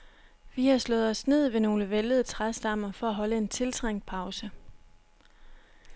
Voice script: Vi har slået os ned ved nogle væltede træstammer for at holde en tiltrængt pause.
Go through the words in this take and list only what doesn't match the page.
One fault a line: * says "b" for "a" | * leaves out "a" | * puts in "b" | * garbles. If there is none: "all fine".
all fine